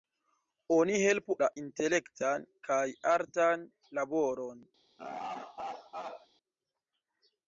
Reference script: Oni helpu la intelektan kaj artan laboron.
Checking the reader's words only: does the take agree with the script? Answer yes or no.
yes